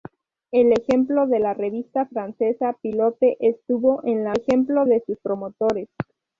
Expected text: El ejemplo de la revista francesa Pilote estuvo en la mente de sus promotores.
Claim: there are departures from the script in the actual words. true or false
true